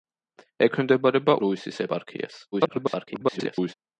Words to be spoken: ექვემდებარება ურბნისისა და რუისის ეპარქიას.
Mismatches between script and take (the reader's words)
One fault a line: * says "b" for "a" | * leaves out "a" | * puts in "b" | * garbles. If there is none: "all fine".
* leaves out "ურბნისისა და"
* garbles